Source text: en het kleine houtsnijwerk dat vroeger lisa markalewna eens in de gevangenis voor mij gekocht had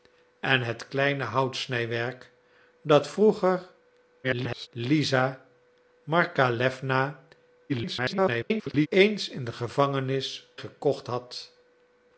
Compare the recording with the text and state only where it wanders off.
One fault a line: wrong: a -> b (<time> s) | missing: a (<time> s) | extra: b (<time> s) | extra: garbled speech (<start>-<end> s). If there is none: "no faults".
extra: garbled speech (4.2-4.7 s)
extra: garbled speech (7.7-8.9 s)
missing: voor mij (10.5 s)